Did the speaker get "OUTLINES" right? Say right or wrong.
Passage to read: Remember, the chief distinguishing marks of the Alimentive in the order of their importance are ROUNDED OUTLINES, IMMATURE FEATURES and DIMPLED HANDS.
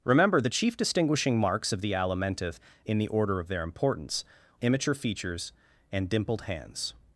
wrong